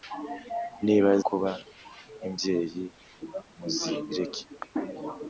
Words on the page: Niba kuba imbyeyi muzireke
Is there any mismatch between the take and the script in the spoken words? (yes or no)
no